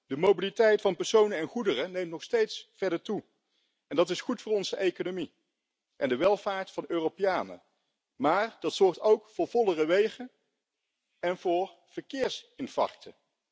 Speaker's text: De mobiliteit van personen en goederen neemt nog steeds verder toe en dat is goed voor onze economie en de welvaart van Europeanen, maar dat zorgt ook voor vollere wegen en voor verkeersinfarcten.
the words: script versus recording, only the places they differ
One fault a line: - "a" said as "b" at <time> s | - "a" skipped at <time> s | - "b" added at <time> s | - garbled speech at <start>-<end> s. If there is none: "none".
none